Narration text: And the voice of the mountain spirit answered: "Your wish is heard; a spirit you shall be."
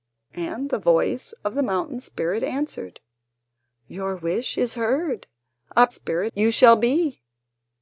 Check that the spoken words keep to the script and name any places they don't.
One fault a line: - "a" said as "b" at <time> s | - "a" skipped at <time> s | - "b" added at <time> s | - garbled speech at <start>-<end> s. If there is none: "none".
none